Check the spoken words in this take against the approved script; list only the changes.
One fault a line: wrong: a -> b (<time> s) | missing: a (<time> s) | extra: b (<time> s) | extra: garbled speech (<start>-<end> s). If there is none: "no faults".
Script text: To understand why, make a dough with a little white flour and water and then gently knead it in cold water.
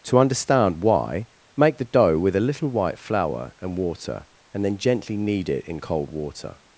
wrong: a -> the (1.8 s)